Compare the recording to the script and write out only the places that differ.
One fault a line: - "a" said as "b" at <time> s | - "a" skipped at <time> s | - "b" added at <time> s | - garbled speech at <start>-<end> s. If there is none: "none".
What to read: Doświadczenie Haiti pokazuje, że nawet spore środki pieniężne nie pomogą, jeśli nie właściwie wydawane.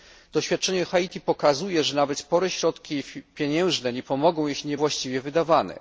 none